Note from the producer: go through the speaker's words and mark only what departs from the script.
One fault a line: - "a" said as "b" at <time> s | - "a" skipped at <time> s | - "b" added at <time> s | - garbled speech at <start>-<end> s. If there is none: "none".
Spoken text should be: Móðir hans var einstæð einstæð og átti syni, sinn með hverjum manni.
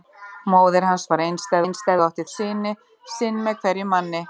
none